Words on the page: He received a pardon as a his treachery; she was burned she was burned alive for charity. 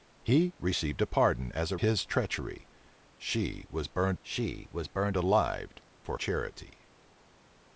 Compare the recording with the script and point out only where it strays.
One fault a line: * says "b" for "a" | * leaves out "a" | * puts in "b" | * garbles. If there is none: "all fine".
all fine